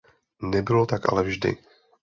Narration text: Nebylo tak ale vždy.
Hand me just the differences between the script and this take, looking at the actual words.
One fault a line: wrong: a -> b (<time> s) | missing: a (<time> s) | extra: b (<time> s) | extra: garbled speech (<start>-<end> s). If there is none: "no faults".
no faults